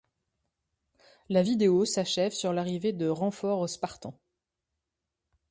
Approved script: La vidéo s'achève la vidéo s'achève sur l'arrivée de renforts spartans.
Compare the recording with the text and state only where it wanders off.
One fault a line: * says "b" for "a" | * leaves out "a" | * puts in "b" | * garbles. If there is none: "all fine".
* leaves out "la vidéo s'achève"